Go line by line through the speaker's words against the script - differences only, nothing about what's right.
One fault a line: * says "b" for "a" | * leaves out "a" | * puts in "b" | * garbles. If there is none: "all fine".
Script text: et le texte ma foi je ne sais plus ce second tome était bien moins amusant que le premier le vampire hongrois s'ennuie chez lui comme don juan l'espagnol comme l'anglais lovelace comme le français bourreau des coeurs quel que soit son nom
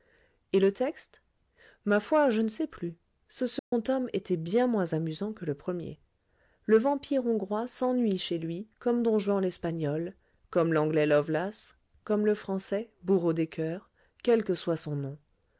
all fine